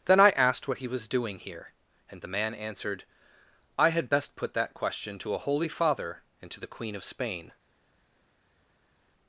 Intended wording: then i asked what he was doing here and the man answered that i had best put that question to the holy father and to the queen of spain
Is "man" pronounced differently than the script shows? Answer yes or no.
no